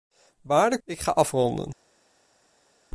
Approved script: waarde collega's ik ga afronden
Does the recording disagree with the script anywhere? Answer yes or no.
yes